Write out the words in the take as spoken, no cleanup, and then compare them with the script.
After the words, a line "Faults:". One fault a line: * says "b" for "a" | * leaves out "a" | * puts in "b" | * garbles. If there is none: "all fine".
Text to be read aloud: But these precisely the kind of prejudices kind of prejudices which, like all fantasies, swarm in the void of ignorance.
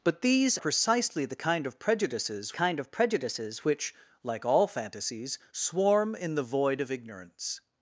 But these precisely the kind of prejudices kind of prejudices which, like all fantasies, swarm in the void of ignorance.
Faults:
all fine